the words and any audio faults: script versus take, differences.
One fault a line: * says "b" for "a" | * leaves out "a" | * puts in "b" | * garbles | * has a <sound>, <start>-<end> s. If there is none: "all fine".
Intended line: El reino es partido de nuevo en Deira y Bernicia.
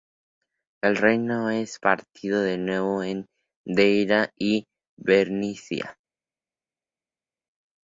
all fine